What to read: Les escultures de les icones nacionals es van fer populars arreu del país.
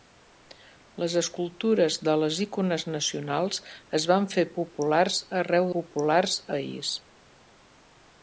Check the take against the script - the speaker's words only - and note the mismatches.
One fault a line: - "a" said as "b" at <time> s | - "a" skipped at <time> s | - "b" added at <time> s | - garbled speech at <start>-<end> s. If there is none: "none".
- "del" said as "populars" at 5.8 s